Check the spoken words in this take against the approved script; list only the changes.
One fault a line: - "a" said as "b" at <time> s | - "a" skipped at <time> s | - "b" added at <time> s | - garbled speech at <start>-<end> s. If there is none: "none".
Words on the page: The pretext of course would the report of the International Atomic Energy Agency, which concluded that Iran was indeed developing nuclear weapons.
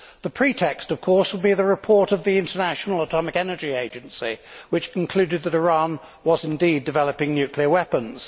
- "be" added at 1.4 s